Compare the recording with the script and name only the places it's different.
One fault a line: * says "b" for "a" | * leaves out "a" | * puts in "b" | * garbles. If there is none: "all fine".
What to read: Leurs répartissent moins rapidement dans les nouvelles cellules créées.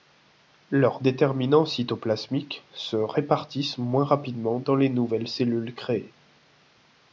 * puts in "déterminants cytoplasmiques se"